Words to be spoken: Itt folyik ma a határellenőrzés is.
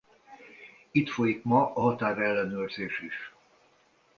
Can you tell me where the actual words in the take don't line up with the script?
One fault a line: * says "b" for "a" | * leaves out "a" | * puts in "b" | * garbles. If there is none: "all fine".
all fine